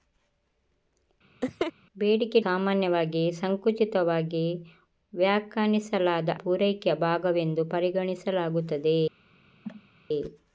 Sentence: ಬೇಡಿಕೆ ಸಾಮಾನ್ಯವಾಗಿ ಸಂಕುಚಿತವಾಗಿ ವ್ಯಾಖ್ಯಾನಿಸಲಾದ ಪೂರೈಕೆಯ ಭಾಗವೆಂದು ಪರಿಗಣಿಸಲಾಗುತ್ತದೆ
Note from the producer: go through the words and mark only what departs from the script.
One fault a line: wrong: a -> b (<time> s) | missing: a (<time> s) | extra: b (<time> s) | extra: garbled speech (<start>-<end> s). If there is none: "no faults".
no faults